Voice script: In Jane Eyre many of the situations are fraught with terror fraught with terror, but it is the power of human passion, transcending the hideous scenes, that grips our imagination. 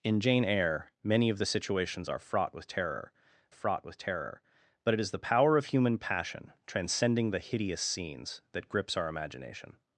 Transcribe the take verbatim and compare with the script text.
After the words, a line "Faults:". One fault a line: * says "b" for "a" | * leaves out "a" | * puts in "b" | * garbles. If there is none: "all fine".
In Jane Eyre many of the situations are fraught with terror fraught with terror, but it is the power of human passion, transcending the hideous scenes, that grips our imagination.
Faults:
all fine